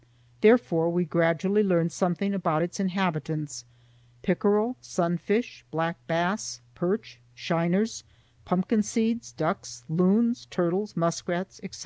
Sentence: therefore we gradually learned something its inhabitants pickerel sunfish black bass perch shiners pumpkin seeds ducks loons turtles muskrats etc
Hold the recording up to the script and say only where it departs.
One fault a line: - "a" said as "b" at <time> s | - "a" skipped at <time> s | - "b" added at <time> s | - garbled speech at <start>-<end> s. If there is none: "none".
- "about" added at 2.3 s